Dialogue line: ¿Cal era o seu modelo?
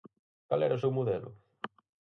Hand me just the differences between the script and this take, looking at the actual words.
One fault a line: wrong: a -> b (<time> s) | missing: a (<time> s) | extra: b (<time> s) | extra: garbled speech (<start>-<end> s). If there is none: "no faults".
no faults